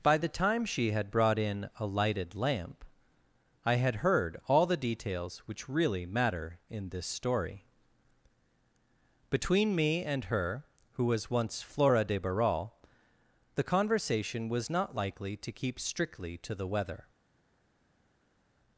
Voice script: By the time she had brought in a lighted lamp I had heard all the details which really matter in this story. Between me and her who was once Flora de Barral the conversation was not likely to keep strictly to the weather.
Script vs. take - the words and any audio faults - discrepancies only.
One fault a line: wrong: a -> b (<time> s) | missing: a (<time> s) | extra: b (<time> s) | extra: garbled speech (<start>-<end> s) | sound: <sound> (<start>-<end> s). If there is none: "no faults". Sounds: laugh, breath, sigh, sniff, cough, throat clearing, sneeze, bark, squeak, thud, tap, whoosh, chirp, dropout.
no faults